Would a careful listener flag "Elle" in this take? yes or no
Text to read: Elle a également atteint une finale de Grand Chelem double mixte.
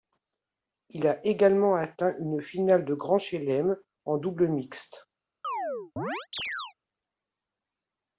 yes